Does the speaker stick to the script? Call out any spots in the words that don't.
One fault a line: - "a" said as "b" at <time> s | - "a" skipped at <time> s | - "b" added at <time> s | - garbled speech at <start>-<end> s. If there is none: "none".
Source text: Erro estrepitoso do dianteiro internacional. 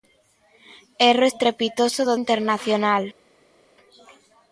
- "dianteiro" skipped at 2.1 s